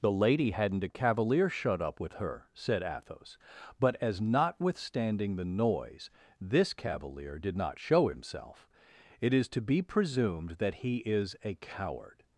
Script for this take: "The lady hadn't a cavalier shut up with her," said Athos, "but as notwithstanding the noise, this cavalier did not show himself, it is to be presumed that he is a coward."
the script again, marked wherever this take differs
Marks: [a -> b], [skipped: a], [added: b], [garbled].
"The lady hadn't a cavalier shut up with her," said Athos, "but as notwithstanding the noise, this cavalier did not show himself, it is to be presumed that he is a coward."